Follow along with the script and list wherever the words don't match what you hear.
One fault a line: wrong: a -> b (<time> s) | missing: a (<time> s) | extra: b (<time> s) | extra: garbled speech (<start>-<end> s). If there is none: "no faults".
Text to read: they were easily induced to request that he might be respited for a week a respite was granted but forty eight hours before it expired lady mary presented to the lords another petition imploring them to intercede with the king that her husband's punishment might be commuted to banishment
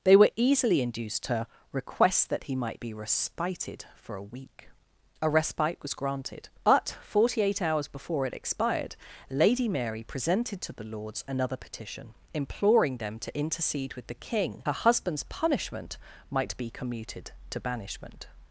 missing: that (14.6 s)